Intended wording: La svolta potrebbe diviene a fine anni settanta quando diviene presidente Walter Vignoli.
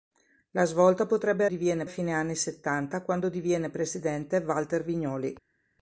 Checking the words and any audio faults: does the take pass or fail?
pass